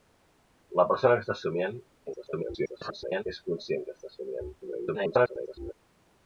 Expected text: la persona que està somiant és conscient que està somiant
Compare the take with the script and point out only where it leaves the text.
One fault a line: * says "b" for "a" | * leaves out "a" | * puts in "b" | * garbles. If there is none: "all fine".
* garbles
* garbles